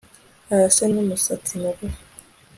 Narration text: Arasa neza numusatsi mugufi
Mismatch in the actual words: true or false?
true